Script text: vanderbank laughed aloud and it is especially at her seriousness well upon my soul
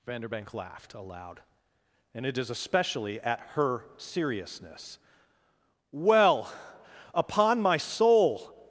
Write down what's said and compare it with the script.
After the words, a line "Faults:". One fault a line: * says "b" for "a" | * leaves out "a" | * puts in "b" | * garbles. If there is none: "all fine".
vanderbank laughed aloud and it is especially at her seriousness well upon my soul
Faults:
all fine